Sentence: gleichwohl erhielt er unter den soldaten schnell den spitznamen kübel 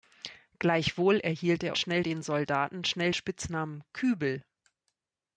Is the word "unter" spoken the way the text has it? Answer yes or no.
no